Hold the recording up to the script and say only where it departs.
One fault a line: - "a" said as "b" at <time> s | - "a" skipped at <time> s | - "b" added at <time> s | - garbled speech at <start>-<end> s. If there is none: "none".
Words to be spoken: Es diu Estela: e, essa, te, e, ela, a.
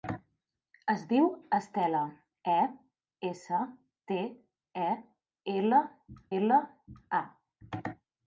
- "ela" added at 6.4 s